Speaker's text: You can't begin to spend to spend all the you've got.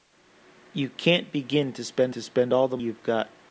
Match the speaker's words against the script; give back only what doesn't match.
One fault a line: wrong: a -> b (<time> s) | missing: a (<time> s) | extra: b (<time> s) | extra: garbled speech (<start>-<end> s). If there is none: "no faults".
no faults